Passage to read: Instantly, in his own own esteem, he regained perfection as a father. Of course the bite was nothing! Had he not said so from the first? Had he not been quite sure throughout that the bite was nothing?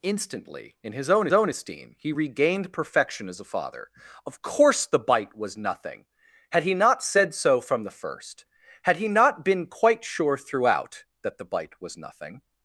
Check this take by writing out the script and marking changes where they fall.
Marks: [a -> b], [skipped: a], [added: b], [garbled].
Instantly, in his own own esteem, he regained perfection as a father. Of course the bite was nothing! Had he not said so from the first? Had he not been quite sure throughout that the bite was nothing?